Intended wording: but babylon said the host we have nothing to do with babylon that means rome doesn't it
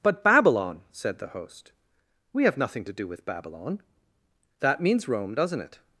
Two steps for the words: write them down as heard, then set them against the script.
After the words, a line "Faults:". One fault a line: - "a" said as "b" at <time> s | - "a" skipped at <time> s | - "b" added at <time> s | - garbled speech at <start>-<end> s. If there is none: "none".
but babylon said the host we have nothing to do with babylon that means rome doesn't it
Faults:
none